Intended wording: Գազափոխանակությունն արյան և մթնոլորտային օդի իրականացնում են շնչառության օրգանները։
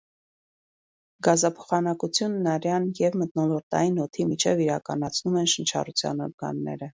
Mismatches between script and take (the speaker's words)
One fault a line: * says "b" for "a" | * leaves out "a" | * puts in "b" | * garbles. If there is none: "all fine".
* puts in "միջև"